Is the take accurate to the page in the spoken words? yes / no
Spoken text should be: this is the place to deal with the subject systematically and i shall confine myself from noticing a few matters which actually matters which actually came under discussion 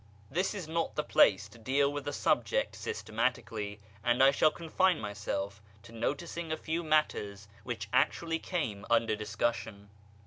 no